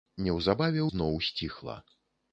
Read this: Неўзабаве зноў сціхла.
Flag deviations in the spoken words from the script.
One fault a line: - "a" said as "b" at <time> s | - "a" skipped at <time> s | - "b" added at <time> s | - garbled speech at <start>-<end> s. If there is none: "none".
none